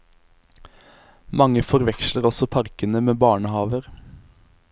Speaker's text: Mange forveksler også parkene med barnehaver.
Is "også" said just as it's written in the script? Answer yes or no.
yes